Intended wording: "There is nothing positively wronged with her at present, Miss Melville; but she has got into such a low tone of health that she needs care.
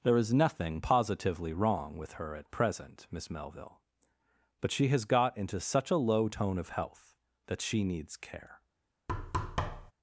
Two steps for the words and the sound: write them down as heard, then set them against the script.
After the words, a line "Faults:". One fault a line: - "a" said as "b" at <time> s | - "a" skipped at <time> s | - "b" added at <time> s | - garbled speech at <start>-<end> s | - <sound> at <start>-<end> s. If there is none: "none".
"There is nothing positively wrong with her at present, Miss Melville; but she has got into such a low tone of health that she needs care.
Faults:
- "wronged" said as "wrong" at 1.5 s
- thud at 9.1-9.9 s